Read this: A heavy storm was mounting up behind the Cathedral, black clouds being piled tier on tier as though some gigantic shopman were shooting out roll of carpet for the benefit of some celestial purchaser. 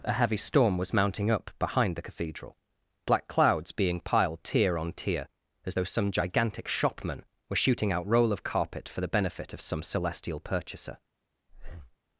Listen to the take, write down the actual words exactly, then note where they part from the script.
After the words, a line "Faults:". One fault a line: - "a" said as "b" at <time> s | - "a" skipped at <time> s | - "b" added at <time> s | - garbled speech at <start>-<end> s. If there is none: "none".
A heavy storm was mounting up behind the Cathedral, black clouds being piled tier on tier as though some gigantic shopman were shooting out roll of carpet for the benefit of some celestial purchaser.
Faults:
none